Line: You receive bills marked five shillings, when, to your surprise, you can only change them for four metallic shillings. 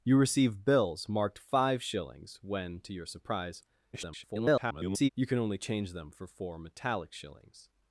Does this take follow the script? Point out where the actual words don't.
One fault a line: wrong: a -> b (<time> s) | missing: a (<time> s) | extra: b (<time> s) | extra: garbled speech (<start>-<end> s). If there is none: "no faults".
extra: garbled speech (3.9-5.1 s)